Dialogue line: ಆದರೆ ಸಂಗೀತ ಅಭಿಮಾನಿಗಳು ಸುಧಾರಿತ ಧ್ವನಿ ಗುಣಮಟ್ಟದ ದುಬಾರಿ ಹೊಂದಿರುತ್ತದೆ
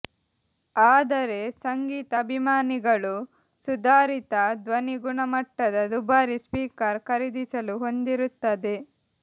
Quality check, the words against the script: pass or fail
fail